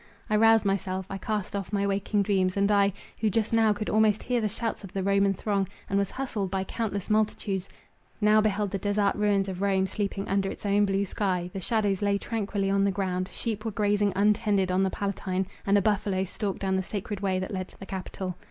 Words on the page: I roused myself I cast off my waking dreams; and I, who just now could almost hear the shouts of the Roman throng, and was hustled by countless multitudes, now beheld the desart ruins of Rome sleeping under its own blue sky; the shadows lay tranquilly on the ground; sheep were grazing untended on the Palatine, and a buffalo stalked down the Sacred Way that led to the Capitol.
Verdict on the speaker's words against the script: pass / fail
pass